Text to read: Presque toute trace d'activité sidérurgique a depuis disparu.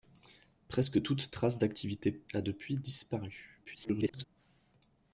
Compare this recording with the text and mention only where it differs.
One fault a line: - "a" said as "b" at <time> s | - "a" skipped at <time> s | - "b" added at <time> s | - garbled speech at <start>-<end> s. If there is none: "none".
- "sidérurgique" skipped at 2.2 s
- garbled speech at 3.6-4.2 s